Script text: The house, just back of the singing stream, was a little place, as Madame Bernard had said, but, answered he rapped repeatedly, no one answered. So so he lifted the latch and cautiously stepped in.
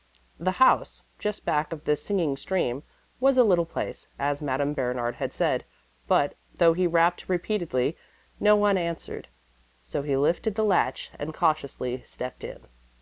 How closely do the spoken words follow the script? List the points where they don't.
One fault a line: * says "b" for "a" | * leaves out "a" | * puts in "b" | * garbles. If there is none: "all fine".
* says "though" for "answered"
* leaves out "so"